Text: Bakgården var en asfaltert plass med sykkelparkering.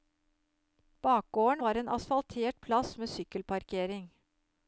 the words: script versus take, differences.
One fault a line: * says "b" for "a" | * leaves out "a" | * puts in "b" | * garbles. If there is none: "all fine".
all fine